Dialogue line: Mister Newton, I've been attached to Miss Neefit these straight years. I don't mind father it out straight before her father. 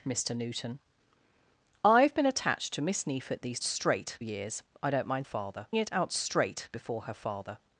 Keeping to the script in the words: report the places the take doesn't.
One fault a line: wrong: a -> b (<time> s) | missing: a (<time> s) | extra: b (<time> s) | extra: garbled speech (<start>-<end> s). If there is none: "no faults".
no faults